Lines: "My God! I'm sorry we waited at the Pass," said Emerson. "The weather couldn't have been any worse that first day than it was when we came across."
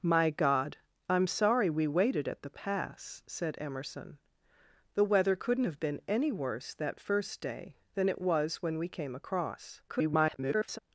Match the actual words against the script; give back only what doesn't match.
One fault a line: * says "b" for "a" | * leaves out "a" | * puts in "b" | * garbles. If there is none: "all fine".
* garbles